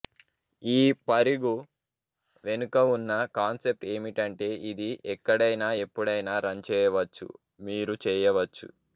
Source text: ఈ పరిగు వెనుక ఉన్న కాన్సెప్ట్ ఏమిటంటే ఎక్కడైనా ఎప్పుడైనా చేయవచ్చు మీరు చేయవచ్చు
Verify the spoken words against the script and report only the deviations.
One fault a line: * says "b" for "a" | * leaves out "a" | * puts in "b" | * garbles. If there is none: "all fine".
* puts in "ఇది"
* puts in "రన్"